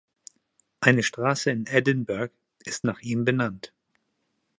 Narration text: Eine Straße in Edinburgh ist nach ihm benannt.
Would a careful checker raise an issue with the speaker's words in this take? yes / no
no